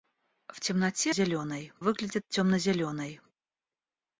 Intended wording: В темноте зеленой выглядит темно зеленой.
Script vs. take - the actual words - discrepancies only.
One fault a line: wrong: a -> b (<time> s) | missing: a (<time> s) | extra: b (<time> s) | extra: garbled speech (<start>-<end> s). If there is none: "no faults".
no faults